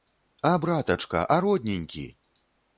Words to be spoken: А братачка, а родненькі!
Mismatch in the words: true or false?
false